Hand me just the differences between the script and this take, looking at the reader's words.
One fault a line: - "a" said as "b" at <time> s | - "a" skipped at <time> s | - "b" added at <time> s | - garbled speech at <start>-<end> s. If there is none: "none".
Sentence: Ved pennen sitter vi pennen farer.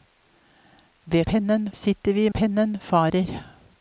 none